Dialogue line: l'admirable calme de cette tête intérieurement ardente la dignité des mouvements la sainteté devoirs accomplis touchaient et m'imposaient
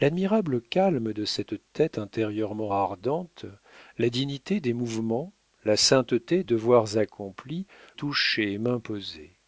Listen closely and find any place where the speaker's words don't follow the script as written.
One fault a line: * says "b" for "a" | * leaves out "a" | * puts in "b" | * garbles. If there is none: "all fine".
all fine